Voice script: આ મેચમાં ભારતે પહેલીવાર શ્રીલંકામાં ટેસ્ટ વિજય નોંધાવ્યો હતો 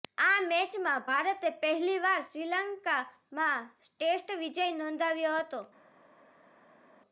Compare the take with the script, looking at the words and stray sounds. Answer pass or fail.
pass